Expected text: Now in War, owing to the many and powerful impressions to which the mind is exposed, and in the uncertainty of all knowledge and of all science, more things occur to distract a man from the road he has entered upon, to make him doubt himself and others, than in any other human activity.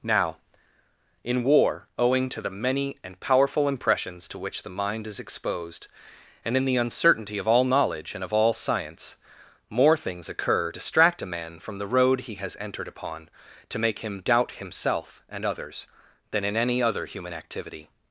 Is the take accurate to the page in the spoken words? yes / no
no